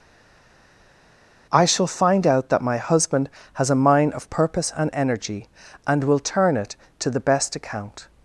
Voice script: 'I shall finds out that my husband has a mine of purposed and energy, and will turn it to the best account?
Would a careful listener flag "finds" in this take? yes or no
yes